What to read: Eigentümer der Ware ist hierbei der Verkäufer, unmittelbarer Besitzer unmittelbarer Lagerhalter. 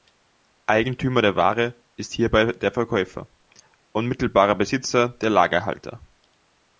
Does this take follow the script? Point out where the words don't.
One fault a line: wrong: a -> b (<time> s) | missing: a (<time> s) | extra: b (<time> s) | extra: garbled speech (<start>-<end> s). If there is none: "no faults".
wrong: unmittelbarer -> der (5.1 s)